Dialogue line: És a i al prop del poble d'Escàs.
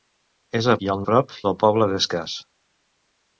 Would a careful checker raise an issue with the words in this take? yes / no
no